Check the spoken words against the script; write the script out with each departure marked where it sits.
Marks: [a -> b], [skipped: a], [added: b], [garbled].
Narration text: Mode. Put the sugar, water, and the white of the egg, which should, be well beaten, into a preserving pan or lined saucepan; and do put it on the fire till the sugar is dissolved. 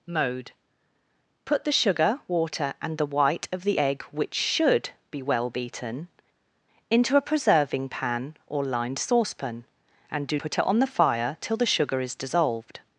Mode. Put the sugar, water, and the white of the egg, which should, be well beaten, into a preserving pan or lined saucepan; and do put it on the fire till the sugar is dissolved.